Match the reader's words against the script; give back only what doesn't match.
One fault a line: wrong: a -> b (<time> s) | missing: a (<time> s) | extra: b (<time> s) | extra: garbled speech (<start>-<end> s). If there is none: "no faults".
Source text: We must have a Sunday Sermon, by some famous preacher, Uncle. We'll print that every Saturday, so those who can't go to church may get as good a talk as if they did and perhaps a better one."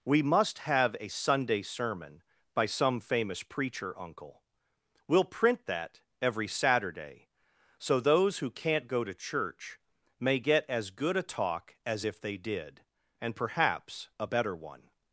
no faults